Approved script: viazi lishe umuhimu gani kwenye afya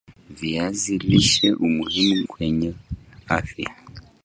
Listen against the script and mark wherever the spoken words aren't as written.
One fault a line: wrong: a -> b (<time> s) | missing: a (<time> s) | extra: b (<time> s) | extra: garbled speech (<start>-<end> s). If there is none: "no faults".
missing: gani (2.3 s)